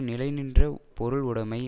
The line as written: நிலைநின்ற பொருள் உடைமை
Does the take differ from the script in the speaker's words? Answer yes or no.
no